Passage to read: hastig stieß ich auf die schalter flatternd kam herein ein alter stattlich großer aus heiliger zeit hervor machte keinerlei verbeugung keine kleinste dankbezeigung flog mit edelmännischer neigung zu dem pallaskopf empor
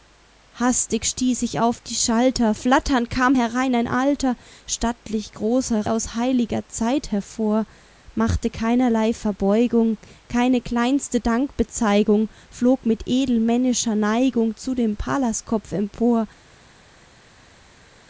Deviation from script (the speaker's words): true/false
false